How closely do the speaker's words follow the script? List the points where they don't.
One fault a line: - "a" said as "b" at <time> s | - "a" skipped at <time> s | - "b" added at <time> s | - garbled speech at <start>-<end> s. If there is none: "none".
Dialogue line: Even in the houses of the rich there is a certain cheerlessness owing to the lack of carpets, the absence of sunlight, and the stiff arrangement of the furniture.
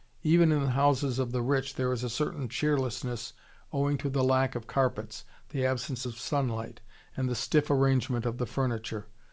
none